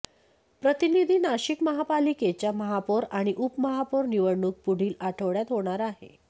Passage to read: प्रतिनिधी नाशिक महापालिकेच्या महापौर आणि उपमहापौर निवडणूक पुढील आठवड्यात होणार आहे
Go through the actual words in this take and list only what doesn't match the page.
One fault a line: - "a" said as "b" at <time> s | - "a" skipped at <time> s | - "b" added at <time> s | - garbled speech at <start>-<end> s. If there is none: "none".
none